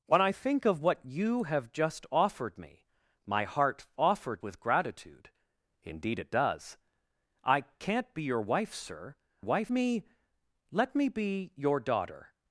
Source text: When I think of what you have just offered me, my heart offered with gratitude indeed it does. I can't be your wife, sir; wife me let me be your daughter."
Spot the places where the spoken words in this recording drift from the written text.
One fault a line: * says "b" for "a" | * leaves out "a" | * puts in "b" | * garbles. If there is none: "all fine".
all fine